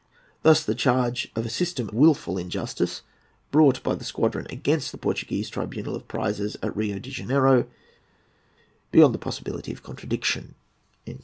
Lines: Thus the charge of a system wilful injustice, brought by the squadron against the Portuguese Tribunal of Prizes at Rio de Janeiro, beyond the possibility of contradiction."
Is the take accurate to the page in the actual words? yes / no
yes